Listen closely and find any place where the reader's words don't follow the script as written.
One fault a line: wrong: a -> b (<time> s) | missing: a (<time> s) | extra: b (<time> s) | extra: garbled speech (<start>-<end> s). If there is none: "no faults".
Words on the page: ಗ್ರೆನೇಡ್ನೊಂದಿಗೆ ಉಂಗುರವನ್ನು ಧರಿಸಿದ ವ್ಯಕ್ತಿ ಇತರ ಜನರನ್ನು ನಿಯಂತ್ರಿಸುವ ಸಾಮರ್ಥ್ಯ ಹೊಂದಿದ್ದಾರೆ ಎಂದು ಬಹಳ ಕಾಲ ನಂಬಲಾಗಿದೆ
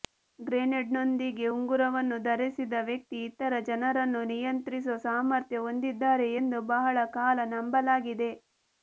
no faults